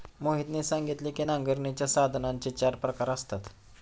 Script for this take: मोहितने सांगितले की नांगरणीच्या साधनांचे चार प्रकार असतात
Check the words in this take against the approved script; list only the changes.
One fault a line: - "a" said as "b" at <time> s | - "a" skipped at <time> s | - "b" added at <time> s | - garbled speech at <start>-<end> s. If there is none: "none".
none